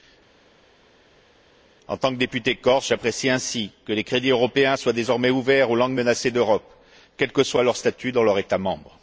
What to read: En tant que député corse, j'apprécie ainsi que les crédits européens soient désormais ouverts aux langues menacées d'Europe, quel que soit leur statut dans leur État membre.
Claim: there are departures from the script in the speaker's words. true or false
false